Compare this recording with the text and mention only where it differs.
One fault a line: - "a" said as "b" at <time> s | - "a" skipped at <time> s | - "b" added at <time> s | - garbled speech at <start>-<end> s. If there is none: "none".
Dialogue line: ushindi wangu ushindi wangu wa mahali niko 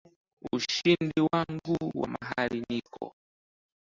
- "ushindi wangu" skipped at 1.8 s